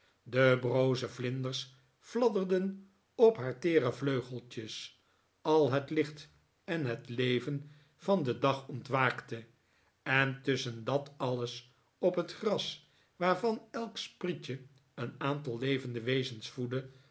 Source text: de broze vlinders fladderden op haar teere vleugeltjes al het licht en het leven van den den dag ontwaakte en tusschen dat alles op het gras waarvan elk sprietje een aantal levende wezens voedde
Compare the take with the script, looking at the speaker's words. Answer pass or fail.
fail